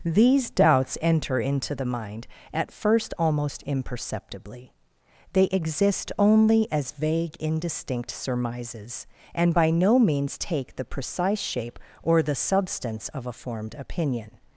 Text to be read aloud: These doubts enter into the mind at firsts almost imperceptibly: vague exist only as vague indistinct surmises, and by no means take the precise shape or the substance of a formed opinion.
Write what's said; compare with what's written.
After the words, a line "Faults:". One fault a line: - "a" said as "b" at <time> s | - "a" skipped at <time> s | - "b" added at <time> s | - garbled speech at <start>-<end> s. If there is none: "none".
These doubts enter into the mind at first almost imperceptibly: they exist only as vague indistinct surmises, and by no means take the precise shape or the substance of a formed opinion.
Faults:
- "firsts" said as "first" at 2.7 s
- "vague" said as "they" at 5.3 s